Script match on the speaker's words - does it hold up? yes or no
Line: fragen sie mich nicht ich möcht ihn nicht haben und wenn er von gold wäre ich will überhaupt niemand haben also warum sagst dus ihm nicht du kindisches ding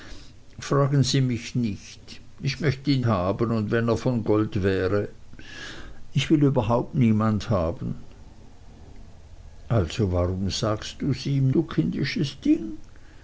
no